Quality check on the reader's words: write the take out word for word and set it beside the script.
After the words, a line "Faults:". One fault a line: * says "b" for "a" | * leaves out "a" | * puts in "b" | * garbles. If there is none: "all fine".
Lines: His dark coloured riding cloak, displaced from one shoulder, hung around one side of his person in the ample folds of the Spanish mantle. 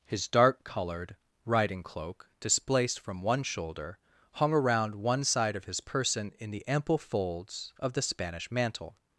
His dark coloured riding cloak, displaced from one shoulder, hung around one side of his person in the ample folds of the Spanish mantle.
Faults:
all fine